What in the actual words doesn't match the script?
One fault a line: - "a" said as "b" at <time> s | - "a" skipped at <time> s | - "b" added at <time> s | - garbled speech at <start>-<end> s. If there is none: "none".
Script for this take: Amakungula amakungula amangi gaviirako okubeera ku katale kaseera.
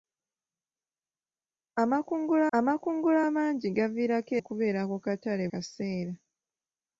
none